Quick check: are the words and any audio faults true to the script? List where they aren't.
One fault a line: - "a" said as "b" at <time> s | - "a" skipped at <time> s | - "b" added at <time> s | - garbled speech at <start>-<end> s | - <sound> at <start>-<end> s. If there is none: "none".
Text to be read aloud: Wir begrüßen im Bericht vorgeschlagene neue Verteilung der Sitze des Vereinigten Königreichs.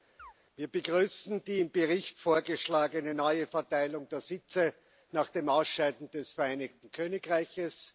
- chirp at 0.2-0.3 s
- "die" added at 1.4 s
- "nach dem Ausscheiden" added at 5.1 s